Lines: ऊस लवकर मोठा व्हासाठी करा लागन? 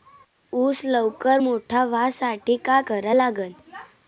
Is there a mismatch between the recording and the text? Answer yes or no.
yes